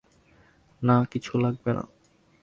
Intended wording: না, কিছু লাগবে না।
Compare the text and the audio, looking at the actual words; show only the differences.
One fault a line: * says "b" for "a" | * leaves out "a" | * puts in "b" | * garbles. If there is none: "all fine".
all fine